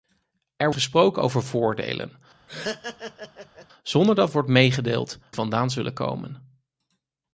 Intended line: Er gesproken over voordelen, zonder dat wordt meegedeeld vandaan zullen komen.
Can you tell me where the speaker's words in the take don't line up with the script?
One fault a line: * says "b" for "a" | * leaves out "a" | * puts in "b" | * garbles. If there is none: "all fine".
all fine